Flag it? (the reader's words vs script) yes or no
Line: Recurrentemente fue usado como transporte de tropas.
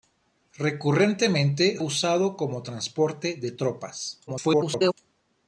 yes